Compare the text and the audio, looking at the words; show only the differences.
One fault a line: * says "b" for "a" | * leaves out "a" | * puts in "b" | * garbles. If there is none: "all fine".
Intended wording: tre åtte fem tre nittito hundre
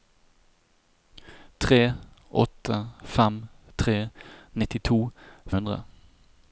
all fine